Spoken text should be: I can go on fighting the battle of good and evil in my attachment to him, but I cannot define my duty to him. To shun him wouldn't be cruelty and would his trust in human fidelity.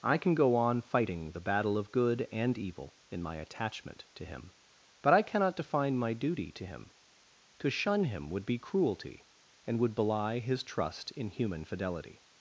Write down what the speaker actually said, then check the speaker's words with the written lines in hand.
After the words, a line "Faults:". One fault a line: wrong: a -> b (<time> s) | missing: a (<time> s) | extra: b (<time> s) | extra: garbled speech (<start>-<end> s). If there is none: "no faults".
I can go on fighting the battle of good and evil in my attachment to him, but I cannot define my duty to him. To shun him would be cruelty and would belie his trust in human fidelity.
Faults:
wrong: wouldn't -> would (8.3 s)
extra: belie (9.9 s)